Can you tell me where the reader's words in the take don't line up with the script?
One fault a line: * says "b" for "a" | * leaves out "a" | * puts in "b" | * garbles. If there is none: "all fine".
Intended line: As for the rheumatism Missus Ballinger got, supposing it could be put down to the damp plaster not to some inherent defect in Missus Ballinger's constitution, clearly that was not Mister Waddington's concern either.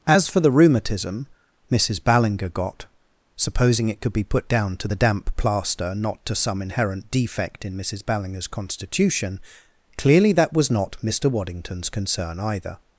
all fine